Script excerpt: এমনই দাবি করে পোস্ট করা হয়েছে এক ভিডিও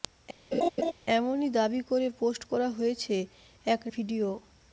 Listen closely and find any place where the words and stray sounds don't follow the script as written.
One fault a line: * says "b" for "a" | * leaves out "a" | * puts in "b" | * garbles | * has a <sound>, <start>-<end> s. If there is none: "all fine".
* has a laugh, 0.5-0.9 s